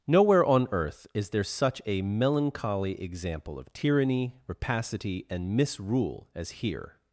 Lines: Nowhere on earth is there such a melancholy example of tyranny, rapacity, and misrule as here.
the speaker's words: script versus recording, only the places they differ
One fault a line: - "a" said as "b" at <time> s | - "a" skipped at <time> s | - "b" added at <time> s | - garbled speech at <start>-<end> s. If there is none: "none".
none